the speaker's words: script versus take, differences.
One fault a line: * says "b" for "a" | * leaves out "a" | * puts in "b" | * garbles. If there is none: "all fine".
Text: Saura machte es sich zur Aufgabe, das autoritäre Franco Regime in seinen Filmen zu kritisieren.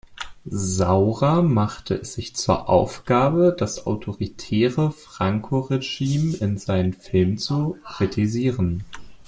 all fine